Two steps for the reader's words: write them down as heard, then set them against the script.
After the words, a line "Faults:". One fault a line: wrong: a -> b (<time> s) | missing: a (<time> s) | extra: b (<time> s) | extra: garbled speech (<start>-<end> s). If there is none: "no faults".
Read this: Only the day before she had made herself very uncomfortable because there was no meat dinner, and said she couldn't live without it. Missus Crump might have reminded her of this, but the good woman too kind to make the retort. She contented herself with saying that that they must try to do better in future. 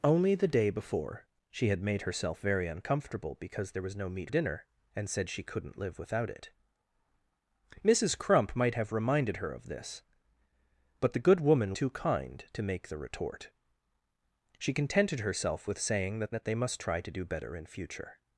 Only the day before she had made herself very uncomfortable because there was no meat dinner, and said she couldn't live without it. Missus Crump might have reminded her of this, but the good woman too kind to make the retort. She contented herself with saying that that they must try to do better in future.
Faults:
no faults